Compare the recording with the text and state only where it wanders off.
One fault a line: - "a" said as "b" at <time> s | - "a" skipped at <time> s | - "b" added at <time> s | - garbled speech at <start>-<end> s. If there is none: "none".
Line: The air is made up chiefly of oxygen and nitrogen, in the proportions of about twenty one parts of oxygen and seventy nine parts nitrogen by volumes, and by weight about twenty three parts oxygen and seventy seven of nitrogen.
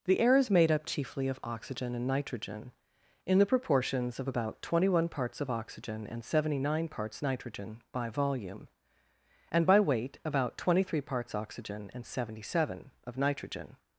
- "volumes" said as "volume" at 8.1 s